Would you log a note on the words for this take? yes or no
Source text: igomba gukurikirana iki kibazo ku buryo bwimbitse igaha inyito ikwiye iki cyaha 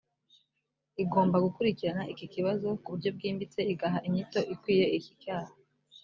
no